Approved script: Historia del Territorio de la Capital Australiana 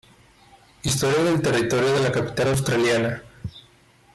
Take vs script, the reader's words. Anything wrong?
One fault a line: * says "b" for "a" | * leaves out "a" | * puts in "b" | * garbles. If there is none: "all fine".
all fine